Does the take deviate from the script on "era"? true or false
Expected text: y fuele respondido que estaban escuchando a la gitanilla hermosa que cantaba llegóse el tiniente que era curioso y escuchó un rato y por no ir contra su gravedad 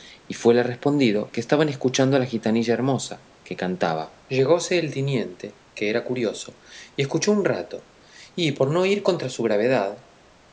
false